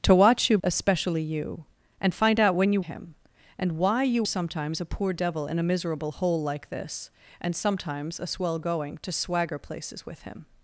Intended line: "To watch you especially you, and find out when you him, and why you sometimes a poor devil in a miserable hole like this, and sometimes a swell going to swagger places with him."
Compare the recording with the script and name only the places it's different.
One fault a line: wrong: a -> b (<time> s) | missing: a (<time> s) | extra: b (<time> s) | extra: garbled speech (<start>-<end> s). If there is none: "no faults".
no faults